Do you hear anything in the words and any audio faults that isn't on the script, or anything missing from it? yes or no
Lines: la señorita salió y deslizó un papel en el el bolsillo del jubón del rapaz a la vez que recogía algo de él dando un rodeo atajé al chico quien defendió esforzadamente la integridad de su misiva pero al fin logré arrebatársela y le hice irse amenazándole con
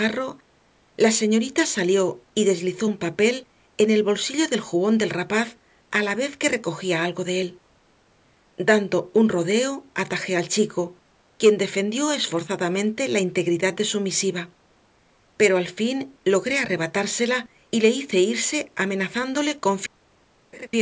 yes